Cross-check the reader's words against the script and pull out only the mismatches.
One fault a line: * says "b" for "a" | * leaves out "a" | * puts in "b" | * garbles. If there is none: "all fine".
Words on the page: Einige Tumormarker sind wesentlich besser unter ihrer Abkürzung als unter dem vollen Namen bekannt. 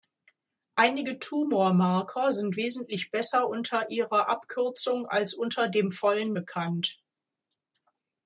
* leaves out "Namen"